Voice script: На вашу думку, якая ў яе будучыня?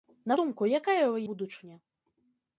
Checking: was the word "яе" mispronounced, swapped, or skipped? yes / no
yes